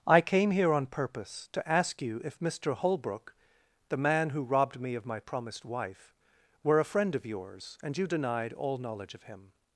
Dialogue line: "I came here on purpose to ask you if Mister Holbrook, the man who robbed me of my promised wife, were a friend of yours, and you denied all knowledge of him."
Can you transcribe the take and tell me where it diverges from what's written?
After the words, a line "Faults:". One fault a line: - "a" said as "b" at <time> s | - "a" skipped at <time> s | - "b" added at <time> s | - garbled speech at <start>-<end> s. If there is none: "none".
"I came here on purpose to ask you if Mister Holbrook, the man who robbed me of my promised wife, were a friend of yours, and you denied all knowledge of him."
Faults:
none